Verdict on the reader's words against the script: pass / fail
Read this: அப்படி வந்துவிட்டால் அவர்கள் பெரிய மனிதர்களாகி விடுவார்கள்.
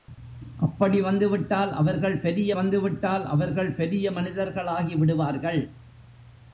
fail